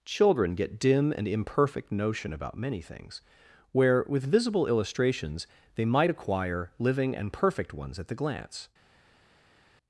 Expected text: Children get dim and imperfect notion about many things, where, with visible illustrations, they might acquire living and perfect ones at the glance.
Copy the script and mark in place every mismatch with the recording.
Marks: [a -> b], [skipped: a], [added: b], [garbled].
Children get dim and imperfect notion about many things, where, with visible illustrations, they might acquire living and perfect ones at the glance.